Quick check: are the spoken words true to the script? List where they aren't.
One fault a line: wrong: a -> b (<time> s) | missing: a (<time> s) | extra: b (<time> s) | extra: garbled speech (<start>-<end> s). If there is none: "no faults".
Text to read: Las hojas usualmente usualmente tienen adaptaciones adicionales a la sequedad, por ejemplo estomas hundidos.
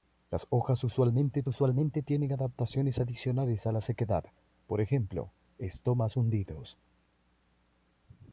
no faults